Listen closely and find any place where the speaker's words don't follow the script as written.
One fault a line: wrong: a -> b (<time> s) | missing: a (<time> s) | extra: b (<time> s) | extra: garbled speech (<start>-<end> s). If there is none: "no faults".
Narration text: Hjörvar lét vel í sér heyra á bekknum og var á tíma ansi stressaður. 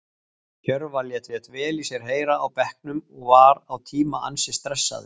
extra: lét (1.3 s)